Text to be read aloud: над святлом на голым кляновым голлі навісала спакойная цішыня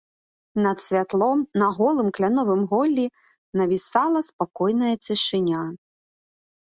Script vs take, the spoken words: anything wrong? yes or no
no